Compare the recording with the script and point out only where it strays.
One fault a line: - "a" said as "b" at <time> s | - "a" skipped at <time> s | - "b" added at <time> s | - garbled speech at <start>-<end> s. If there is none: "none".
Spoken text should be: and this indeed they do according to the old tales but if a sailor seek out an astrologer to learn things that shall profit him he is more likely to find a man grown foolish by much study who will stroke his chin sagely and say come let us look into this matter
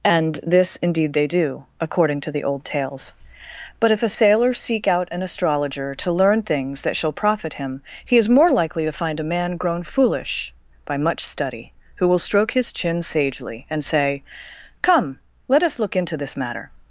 none